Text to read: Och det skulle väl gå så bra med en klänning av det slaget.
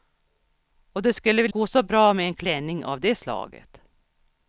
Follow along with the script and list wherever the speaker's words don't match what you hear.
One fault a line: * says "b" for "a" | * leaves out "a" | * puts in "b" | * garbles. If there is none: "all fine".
all fine